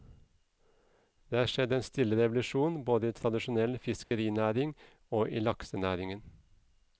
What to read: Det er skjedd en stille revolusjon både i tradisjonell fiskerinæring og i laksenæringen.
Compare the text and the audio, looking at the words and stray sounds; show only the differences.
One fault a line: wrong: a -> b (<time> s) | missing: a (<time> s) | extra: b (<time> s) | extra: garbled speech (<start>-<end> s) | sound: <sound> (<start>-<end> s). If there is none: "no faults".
sound: dropout (4.0-4.1 s)